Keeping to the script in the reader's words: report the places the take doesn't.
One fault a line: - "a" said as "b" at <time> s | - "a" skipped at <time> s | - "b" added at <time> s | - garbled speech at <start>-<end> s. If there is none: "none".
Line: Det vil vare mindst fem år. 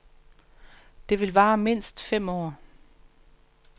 none